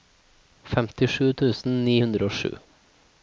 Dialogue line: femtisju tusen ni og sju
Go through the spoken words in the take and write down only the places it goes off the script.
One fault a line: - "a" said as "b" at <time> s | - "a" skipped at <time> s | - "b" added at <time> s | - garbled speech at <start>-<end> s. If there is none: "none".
- "hundre" added at 2.0 s